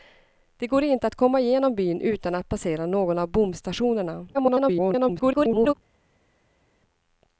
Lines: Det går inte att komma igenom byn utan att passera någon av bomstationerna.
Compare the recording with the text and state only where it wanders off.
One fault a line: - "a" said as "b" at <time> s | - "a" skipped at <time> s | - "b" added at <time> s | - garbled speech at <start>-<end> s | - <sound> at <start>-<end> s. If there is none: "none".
- garbled speech at 4.3-5.7 s